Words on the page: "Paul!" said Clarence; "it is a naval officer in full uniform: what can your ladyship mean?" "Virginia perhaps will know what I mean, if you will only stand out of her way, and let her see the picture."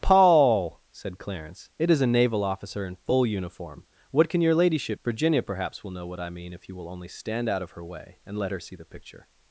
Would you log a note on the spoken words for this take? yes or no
yes